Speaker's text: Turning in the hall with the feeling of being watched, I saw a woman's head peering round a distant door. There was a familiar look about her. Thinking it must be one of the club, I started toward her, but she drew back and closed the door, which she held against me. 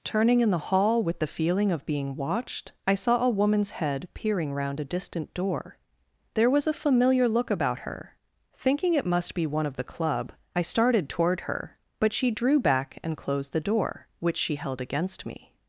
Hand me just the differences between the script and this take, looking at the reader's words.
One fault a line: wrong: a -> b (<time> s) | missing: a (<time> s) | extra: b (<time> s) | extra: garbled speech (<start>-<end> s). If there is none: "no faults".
no faults